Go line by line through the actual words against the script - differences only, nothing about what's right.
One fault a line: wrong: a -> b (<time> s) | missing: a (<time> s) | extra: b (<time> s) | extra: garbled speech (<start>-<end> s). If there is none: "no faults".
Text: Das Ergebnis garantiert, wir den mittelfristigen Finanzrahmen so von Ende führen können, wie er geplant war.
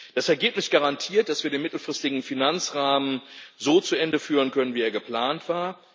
extra: dass (1.3 s)
wrong: von -> zu (3.8 s)